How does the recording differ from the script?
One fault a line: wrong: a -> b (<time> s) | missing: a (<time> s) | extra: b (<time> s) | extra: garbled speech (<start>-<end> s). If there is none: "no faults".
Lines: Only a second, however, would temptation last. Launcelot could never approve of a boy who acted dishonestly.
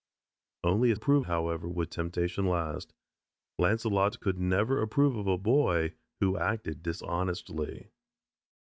wrong: second -> approve (0.9 s)